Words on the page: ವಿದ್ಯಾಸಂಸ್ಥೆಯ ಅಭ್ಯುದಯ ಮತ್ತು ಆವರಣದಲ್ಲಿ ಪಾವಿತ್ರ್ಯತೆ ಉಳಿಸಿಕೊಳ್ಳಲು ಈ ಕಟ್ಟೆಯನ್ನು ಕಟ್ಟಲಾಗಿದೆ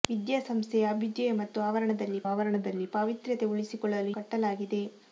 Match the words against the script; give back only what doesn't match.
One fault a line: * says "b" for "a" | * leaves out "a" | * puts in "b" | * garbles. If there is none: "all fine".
* puts in "ಆವರಣದಲ್ಲಿ"
* leaves out "ಈ ಕಟ್ಟೆಯನ್ನು"